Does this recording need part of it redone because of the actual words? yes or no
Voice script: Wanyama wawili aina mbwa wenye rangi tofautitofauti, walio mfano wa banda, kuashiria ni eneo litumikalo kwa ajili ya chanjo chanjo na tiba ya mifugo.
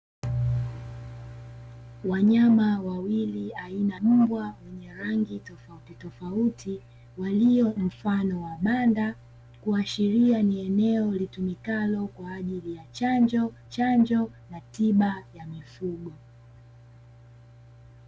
no